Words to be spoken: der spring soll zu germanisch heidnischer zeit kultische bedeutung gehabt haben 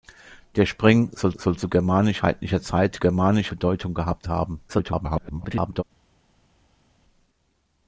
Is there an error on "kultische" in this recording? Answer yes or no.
yes